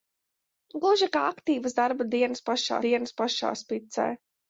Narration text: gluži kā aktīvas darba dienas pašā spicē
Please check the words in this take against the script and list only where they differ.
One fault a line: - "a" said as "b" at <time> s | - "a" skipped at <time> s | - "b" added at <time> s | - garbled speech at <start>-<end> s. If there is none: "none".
- "dienas pašā" added at 2.9 s